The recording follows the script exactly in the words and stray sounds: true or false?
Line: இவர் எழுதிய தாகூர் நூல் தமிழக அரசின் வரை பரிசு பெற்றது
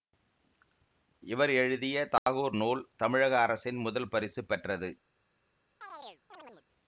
false